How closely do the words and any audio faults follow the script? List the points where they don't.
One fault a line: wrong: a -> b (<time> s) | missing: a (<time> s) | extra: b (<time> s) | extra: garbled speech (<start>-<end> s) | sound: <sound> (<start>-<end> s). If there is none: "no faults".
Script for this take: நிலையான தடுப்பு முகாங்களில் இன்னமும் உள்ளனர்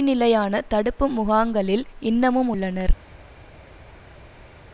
no faults